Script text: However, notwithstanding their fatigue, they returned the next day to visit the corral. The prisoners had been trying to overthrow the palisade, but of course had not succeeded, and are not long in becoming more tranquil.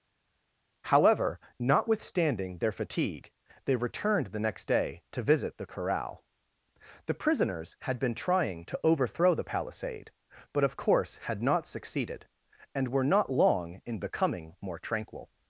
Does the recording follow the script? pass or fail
fail